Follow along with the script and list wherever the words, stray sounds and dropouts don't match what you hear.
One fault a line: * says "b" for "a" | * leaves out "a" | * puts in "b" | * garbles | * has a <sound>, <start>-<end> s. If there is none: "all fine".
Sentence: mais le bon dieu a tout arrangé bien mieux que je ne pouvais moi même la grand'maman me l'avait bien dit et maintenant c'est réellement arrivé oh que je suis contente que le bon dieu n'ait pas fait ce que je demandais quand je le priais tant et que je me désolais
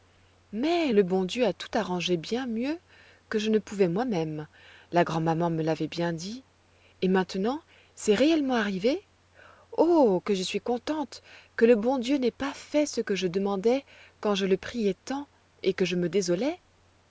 all fine